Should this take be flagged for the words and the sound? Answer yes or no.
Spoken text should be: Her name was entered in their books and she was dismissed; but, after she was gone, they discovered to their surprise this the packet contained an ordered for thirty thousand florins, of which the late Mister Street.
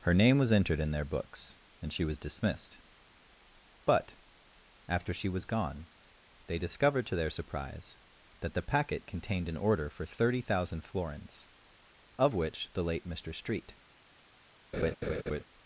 yes